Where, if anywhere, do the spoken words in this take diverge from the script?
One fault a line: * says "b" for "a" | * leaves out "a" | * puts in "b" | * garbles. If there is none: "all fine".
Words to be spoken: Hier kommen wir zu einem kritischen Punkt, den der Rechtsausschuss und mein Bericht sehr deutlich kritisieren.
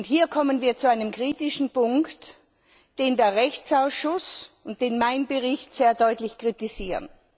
all fine